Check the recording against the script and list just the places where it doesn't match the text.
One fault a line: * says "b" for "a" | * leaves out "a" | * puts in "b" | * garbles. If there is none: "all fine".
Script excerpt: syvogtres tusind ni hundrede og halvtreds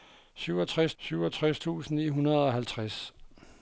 * puts in "syvogtres"